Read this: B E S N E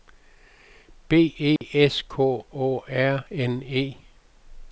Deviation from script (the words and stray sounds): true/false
true